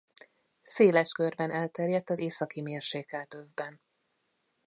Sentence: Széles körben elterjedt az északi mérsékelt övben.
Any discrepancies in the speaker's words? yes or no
no